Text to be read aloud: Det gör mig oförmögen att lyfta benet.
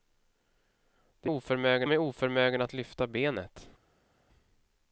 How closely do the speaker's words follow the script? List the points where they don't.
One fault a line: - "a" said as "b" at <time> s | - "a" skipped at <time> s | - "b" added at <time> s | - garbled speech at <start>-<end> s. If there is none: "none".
- "gör" said as "oförmögen" at 1.2 s